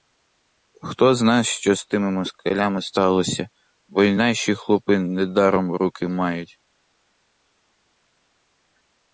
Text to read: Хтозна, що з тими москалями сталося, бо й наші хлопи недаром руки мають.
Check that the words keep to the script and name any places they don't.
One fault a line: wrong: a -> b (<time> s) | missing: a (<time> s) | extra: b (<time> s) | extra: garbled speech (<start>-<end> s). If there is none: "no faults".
no faults